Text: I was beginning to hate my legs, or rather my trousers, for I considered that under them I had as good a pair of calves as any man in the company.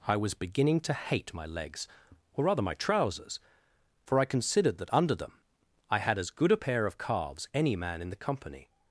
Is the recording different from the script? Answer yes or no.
yes